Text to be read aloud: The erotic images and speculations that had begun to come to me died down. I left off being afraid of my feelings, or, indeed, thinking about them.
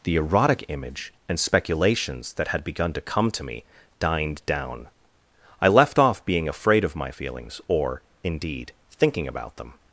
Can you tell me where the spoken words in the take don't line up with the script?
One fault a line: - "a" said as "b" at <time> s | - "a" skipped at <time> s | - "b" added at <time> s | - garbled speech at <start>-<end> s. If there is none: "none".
- "images" said as "image" at 0.7 s
- "died" said as "dined" at 4.0 s